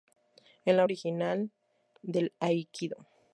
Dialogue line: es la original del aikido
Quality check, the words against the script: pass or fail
pass